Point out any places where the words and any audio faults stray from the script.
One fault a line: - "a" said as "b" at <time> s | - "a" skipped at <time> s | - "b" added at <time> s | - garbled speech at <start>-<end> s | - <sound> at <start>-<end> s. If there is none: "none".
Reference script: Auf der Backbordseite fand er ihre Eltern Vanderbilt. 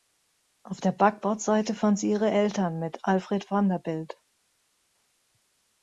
- "er" said as "sie" at 2.0 s
- "mit Alfred" added at 2.8 s